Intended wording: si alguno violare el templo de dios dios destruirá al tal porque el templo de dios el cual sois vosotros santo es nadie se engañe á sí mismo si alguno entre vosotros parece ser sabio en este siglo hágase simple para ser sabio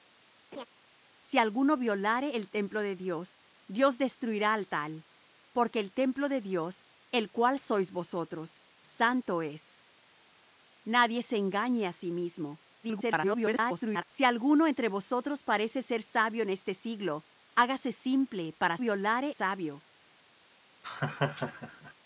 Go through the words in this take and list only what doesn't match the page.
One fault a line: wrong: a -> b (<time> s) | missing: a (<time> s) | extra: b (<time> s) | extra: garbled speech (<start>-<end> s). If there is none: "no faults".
extra: garbled speech (12.8-14.0 s)
wrong: ser -> violare (18.8 s)